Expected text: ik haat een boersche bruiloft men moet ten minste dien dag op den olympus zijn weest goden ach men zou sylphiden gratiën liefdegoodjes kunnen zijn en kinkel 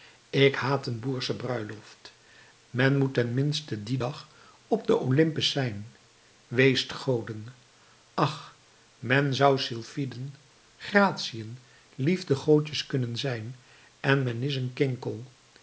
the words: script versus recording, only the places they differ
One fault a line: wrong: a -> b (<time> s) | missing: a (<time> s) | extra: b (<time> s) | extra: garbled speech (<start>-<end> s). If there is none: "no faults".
extra: men is een (14.2 s)